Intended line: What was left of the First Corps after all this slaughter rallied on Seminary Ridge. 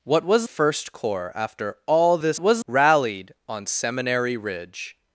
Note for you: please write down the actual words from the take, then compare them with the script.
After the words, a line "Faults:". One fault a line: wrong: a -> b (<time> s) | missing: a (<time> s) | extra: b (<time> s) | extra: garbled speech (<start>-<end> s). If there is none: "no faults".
What was First Corps after all this was rallied on Seminary Ridge.
Faults:
missing: left of the (0.5 s)
wrong: slaughter -> was (2.4 s)